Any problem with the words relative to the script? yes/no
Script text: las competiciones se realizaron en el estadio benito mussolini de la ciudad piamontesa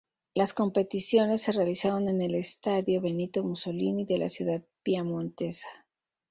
no